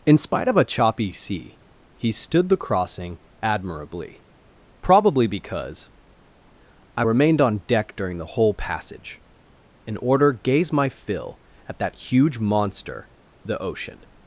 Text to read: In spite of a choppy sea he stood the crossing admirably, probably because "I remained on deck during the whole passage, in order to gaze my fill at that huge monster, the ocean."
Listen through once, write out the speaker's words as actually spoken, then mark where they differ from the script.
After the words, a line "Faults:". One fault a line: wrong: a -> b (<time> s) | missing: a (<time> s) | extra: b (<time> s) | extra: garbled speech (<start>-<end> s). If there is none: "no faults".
In spite of a choppy sea he stood the crossing admirably, probably because "I remained on deck during the whole passage, in order gaze my fill at that huge monster, the ocean."
Faults:
missing: to (10.3 s)